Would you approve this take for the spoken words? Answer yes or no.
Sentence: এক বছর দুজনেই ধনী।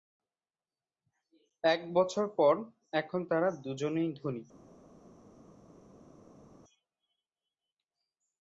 no